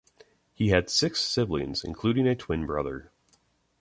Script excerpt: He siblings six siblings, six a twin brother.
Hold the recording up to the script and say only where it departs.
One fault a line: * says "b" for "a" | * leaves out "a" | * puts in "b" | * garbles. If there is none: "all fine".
* says "had" for "siblings"
* says "including" for "six"